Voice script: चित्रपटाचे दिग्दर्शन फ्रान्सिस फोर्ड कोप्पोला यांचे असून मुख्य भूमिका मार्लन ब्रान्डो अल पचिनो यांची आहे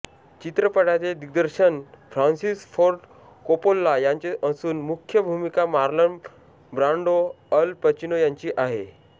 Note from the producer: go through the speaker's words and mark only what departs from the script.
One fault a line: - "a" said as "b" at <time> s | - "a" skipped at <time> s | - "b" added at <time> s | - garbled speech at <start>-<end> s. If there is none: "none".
none